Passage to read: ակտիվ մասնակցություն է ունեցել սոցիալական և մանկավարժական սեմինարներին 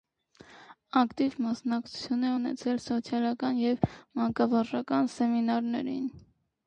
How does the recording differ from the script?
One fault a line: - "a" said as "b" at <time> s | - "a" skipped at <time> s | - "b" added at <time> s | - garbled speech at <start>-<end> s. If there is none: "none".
none